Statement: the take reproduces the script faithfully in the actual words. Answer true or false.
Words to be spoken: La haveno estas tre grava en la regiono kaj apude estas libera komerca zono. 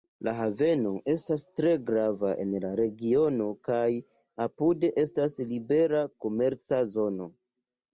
true